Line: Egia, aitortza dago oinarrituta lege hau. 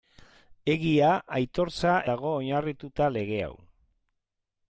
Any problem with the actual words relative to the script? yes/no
no